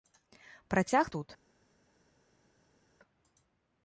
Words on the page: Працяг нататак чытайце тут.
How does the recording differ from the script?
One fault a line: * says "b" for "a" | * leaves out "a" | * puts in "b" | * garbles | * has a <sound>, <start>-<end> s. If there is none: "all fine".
* leaves out "нататак чытайце"